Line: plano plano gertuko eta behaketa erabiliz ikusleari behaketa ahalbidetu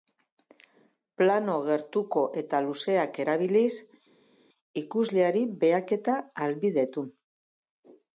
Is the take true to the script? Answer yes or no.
no